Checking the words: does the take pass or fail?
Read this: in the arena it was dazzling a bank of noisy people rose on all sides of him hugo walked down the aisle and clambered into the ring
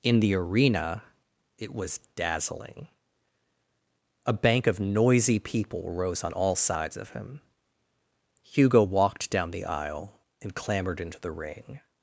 pass